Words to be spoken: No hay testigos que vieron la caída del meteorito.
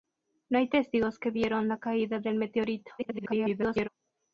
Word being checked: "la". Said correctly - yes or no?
yes